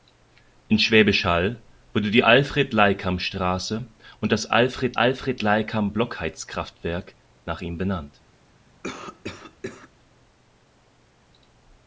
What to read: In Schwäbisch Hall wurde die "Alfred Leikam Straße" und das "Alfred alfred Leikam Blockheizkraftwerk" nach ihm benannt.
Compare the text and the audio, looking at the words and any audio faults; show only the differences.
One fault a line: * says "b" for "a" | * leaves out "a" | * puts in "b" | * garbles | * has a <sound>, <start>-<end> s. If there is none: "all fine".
* has a cough, 8.8-9.9 s